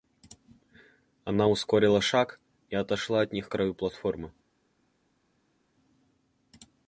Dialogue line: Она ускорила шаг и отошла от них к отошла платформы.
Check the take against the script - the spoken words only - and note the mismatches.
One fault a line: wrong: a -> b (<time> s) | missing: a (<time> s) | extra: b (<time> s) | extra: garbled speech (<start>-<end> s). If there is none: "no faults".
wrong: отошла -> краю (3.5 s)